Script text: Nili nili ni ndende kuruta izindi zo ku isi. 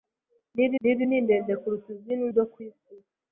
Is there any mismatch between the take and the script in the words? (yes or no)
no